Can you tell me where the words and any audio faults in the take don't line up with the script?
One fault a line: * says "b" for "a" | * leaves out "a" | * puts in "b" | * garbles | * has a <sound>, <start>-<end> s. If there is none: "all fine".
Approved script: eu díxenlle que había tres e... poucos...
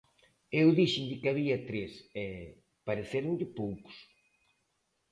* puts in "parecéronlle"